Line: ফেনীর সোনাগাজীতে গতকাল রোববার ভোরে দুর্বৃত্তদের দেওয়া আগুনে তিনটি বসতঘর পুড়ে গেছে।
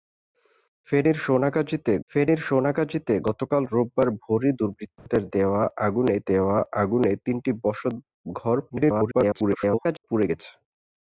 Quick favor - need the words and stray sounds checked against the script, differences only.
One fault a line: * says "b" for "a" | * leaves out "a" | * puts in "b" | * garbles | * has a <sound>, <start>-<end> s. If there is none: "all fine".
* puts in "ফেনীর সোনাগাজীতে"
* has a dropout, 5.0-5.1 s
* puts in "দেওয়া আগুনে"
* garbles